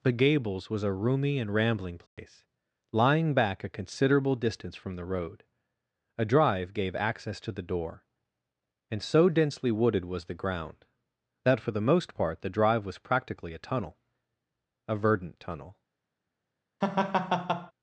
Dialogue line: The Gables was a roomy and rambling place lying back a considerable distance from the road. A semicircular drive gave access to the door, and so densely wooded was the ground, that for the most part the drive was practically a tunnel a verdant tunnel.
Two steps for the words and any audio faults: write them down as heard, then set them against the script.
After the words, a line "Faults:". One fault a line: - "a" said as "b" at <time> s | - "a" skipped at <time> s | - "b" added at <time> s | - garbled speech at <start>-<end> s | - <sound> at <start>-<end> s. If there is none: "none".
The Gables was a roomy and rambling place lying back a considerable distance from the road. A drive gave access to the door, and so densely wooded was the ground, that for the most part the drive was practically a tunnel a verdant tunnel.
Faults:
- dropout at 2.1-2.2 s
- "semicircular" skipped at 6.2 s
- laugh at 16.8-17.7 s